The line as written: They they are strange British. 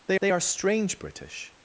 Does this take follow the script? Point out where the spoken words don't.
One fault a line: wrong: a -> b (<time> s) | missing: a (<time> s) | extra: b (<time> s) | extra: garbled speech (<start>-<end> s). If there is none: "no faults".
no faults